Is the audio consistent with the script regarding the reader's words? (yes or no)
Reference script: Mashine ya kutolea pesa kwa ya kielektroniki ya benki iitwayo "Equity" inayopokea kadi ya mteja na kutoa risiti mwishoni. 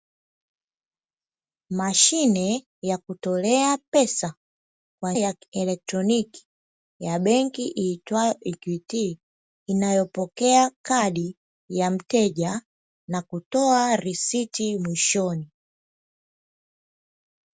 yes